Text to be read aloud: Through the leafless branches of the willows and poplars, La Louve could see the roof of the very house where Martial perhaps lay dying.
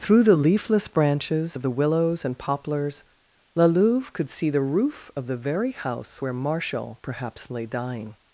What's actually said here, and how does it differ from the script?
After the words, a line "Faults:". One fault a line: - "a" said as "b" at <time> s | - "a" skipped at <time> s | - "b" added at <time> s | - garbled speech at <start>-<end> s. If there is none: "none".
Through the leafless branches of the willows and poplars, La Louve could see the roof of the very house where Martial perhaps lay dying.
Faults:
none